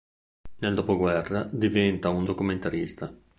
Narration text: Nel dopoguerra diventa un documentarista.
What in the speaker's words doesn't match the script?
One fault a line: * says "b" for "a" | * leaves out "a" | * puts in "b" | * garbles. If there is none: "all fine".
all fine